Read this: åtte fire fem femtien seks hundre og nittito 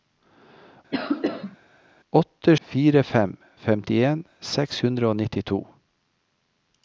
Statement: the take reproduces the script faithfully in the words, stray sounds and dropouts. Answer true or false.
false